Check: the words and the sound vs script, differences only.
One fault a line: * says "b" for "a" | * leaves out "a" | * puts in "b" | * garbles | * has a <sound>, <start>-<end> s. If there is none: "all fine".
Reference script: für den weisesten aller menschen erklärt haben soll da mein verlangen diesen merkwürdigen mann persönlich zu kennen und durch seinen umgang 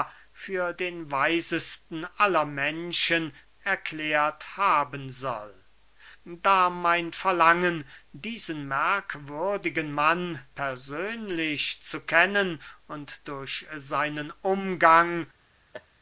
* has a laugh, 15.7-15.9 s